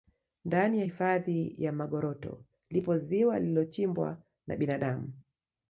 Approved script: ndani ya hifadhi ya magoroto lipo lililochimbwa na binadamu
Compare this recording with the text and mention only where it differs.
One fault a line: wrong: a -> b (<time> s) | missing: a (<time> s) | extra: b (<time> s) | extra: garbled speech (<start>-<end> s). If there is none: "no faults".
extra: ziwa (3.0 s)